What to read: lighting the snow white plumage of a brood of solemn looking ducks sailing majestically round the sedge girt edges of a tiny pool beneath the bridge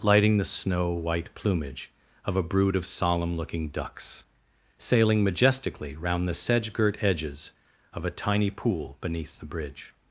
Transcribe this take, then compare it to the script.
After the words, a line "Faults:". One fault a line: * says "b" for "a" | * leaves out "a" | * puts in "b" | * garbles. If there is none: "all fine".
lighting the snow white plumage of a brood of solemn looking ducks sailing majestically round the sedge girt edges of a tiny pool beneath the bridge
Faults:
all fine